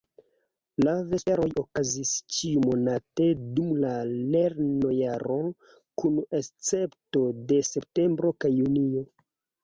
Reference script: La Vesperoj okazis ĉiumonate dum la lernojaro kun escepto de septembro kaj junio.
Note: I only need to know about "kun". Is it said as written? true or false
true